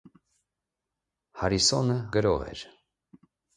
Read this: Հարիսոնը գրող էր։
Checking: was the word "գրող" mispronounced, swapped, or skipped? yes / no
no